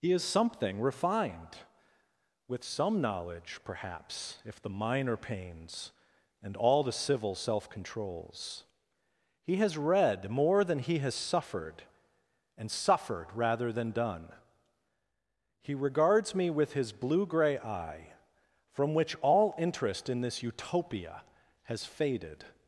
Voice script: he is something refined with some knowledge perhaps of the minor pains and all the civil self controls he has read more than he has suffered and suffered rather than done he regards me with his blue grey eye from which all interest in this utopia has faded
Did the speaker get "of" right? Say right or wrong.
wrong